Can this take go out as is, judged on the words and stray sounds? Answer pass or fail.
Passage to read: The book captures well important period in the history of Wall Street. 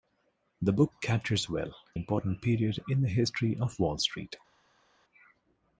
pass